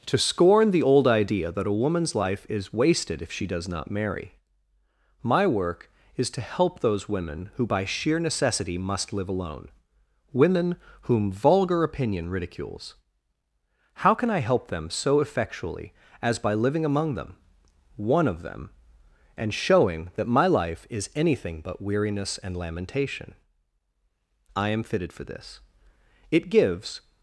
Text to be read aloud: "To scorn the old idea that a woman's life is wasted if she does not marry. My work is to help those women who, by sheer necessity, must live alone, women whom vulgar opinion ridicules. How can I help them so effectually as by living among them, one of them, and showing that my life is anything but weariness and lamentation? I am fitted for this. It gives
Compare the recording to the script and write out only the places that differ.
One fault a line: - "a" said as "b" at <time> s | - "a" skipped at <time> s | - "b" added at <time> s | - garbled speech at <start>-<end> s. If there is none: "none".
none